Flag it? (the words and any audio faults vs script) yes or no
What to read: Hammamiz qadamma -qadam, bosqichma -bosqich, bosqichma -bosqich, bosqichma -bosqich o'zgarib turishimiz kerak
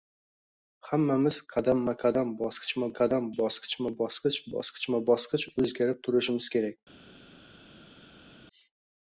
yes